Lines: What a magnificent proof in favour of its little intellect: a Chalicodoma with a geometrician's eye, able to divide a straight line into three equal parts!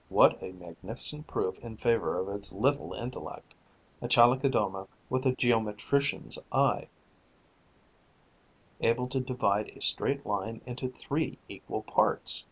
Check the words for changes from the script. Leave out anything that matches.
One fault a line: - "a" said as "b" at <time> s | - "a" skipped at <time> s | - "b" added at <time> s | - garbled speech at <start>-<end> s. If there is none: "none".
none